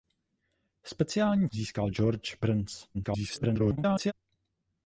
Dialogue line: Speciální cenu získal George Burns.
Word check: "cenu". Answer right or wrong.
wrong